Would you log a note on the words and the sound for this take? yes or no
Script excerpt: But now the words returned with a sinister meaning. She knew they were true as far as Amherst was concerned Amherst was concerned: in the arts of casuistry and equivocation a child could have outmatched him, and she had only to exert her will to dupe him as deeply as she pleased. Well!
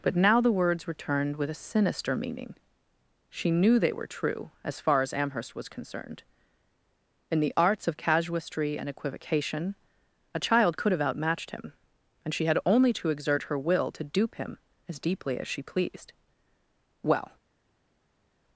yes